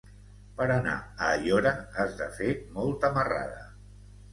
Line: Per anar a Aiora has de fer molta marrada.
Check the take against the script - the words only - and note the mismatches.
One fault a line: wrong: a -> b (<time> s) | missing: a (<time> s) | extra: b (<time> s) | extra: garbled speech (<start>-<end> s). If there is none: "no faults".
no faults